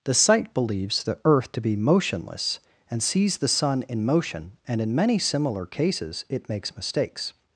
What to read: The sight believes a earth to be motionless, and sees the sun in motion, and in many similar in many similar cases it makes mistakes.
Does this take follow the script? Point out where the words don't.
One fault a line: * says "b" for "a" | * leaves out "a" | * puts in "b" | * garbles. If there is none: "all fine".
* says "the" for "a"
* leaves out "in many similar"